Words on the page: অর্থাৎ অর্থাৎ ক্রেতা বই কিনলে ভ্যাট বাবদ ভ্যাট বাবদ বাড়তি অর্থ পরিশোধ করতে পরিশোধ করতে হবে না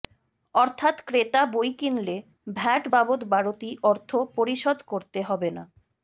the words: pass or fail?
fail